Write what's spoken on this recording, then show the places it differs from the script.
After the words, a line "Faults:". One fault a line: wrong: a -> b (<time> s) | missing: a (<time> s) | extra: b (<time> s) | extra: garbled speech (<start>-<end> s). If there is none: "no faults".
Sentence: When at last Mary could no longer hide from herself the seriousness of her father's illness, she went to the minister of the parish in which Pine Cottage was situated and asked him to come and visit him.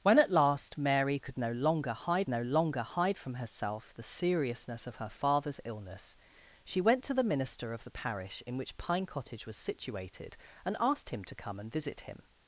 When at last Mary could no longer hide no longer hide from herself the seriousness of her father's illness, she went to the minister of the parish in which Pine Cottage was situated and asked him to come and visit him.
Faults:
extra: no longer hide (2.3 s)